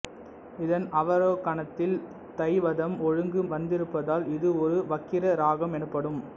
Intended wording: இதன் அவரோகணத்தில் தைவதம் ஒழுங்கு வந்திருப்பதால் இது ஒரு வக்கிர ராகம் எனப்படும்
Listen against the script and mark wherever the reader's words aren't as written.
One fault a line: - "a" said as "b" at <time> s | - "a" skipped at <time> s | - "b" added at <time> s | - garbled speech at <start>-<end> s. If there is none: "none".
none